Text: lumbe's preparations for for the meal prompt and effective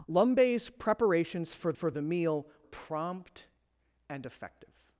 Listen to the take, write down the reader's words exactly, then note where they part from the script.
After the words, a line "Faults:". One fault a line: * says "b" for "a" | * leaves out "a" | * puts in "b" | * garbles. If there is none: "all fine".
lumbe's preparations for for the meal prompt and effective
Faults:
all fine